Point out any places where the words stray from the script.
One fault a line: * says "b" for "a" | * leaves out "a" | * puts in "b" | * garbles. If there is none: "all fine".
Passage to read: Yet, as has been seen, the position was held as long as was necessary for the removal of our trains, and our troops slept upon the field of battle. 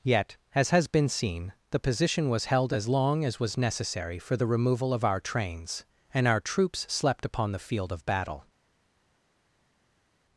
all fine